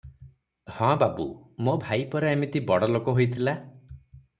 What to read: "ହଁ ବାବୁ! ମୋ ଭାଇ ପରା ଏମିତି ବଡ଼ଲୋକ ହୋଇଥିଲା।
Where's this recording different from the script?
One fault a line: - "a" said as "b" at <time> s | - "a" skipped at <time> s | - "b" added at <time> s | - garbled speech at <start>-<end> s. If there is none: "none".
none